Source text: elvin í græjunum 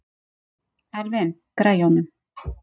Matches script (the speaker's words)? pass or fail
pass